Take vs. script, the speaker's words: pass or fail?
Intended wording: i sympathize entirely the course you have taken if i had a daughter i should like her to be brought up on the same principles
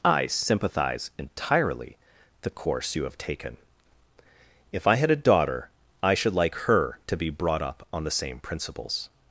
pass